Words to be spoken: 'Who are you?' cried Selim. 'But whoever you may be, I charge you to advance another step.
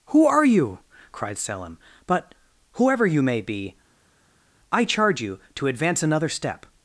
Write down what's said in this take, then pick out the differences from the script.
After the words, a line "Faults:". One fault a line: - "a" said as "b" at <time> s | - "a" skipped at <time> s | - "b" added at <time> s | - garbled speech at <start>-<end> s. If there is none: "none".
'Who are you?' cried Selim. 'But whoever you may be, I charge you to advance another step.
Faults:
none